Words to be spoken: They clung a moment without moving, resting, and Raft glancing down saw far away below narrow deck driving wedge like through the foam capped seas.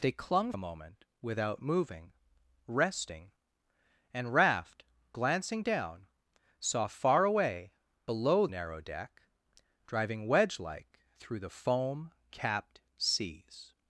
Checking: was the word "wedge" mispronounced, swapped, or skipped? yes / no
no